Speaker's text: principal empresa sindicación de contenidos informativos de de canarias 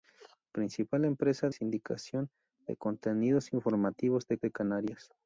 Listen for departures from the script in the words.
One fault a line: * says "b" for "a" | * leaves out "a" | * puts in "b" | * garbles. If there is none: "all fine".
all fine